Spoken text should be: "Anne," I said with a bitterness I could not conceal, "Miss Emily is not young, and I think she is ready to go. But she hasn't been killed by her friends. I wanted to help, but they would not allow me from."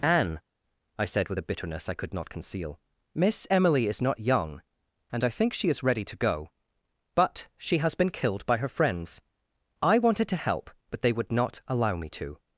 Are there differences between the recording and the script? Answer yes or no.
yes